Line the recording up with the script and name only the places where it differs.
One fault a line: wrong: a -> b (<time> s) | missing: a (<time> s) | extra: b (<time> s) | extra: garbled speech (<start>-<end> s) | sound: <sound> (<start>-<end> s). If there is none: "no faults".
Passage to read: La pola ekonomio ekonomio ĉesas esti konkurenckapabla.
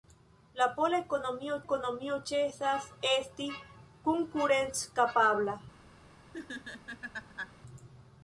sound: laugh (6.3-7.5 s)